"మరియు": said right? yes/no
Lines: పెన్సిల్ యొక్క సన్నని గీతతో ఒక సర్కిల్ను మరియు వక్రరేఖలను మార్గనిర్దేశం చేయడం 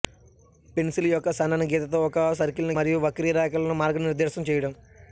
yes